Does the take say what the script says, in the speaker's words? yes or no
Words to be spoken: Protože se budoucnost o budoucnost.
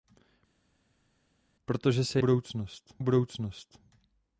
yes